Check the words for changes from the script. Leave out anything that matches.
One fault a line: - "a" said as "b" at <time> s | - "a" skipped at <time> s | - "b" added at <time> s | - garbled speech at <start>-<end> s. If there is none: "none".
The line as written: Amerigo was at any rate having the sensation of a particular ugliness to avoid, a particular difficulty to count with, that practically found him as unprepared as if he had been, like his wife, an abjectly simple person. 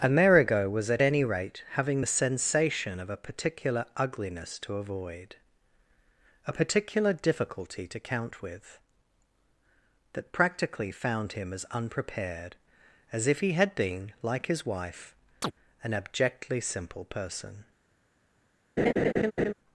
none